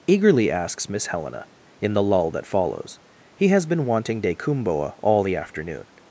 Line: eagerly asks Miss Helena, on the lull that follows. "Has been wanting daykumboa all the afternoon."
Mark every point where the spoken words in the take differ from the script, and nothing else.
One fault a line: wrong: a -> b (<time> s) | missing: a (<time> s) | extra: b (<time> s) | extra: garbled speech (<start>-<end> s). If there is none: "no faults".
wrong: on -> in (1.8 s)
extra: He (3.4 s)